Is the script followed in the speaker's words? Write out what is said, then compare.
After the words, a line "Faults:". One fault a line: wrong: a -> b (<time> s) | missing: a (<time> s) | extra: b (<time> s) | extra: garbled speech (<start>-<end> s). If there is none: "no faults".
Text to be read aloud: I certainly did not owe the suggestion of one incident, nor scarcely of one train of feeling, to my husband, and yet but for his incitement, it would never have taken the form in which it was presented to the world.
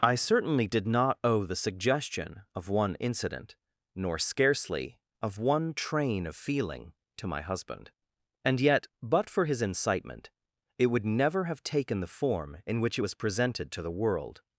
I certainly did not owe the suggestion of one incident, nor scarcely of one train of feeling, to my husband, and yet but for his incitement, it would never have taken the form in which it was presented to the world.
Faults:
no faults